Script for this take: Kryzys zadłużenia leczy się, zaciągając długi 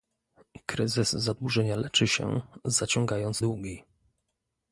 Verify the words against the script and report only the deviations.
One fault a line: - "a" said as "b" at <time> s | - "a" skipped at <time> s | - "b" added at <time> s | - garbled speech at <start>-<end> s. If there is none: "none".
none